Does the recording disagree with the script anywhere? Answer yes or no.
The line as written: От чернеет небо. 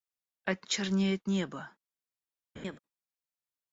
no